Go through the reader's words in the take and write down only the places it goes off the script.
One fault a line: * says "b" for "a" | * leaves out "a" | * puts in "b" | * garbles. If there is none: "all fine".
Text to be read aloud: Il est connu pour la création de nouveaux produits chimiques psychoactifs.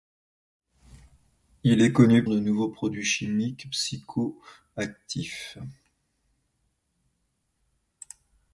* leaves out "pour la création"